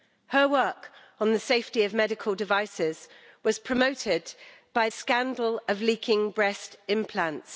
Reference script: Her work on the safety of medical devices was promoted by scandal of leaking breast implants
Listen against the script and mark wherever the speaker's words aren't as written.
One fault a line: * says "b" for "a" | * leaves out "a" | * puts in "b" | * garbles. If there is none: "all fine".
all fine